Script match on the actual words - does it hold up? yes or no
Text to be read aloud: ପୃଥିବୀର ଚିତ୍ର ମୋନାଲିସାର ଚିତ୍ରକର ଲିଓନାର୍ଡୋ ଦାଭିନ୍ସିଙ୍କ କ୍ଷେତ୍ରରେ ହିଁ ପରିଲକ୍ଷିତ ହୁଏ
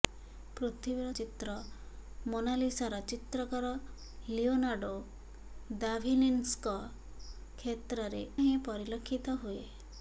yes